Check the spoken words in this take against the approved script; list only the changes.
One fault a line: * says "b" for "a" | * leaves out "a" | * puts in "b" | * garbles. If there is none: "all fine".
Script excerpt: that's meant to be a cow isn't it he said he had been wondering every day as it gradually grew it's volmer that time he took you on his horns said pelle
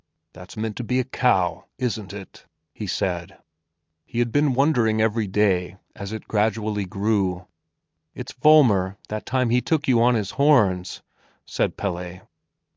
all fine